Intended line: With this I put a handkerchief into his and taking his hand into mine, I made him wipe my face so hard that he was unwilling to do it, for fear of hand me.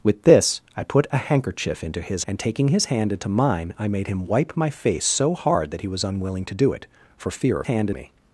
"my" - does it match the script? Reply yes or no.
yes